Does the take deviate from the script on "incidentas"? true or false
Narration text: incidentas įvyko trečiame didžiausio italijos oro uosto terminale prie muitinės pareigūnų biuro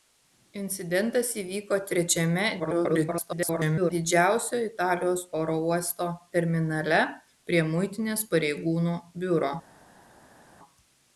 false